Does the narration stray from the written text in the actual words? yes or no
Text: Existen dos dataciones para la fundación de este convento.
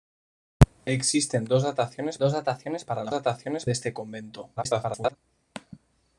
yes